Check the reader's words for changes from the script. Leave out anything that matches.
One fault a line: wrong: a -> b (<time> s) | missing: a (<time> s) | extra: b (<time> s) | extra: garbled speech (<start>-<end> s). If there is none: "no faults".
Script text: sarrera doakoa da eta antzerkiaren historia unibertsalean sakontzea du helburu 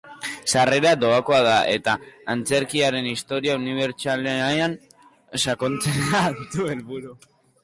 no faults